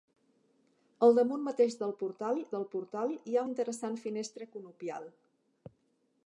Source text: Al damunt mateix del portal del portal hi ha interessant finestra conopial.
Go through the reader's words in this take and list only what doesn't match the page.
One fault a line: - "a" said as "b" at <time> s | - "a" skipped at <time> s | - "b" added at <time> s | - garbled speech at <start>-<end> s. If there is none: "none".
none